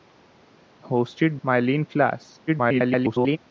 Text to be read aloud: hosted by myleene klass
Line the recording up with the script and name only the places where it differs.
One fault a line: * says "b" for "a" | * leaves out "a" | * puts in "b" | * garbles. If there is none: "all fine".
* leaves out "by"
* garbles